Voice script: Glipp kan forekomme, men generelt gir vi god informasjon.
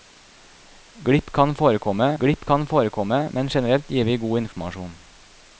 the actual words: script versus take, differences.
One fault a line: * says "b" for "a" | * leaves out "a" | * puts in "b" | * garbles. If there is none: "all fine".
* puts in "glipp kan forekomme"